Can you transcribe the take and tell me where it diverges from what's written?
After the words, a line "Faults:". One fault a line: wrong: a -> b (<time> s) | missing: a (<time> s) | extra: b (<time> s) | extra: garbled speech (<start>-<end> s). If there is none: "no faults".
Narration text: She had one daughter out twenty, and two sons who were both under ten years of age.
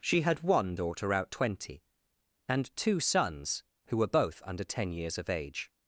She had one daughter out twenty, and two sons who were both under ten years of age.
Faults:
no faults